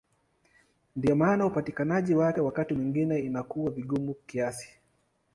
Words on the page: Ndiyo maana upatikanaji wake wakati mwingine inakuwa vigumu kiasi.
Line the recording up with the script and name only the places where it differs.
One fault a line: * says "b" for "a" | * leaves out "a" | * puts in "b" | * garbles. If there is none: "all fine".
all fine